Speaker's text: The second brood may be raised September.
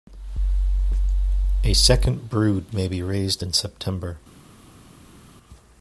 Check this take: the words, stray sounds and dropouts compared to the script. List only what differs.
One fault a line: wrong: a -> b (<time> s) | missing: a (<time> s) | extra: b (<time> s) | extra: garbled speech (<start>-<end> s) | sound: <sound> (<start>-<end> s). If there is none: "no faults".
wrong: The -> A (1.6 s)
extra: in (3.4 s)